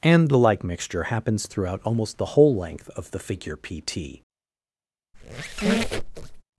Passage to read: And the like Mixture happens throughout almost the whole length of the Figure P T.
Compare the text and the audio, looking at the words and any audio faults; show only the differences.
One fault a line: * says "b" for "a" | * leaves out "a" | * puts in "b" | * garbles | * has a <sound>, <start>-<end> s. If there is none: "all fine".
* has a squeak, 5.1-6.4 s